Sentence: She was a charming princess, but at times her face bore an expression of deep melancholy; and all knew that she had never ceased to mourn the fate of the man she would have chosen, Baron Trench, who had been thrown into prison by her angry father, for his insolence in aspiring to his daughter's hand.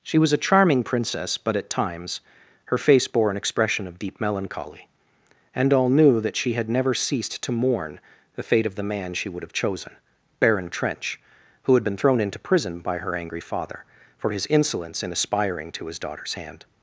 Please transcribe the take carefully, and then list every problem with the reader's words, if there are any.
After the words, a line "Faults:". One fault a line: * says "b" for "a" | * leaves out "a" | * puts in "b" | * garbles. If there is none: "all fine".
She was a charming princess, but at times her face bore an expression of deep melancholy; and all knew that she had never ceased to mourn the fate of the man she would have chosen, Baron Trench, who had been thrown into prison by her angry father, for his insolence in aspiring to his daughter's hand.
Faults:
all fine